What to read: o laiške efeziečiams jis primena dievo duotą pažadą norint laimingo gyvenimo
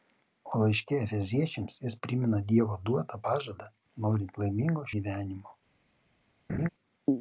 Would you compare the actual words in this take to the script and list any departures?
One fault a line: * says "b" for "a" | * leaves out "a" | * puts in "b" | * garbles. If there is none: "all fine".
all fine